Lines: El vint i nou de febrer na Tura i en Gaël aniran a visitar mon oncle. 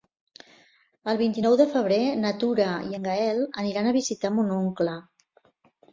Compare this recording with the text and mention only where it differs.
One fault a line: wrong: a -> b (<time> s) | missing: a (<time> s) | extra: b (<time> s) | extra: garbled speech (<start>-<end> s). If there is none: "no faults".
no faults